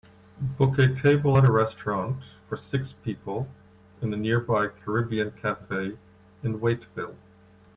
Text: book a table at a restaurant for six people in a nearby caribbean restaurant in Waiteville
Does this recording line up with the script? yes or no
no